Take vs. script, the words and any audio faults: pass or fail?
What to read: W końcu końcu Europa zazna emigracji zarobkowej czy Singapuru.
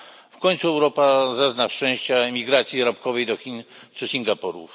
fail